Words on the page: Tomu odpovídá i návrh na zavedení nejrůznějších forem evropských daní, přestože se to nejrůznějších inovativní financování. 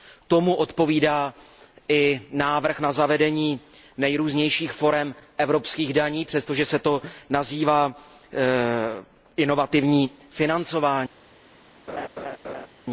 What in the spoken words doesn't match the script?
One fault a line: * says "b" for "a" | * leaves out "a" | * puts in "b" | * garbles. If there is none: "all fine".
* says "nazývá" for "nejrůznějších"